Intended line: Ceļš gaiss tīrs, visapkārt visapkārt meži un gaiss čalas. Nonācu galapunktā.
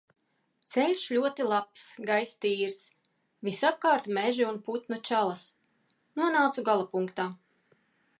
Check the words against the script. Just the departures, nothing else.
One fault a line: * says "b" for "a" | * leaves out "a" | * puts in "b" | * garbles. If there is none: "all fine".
* puts in "ļoti labs"
* leaves out "visapkārt"
* says "putnu" for "gaiss"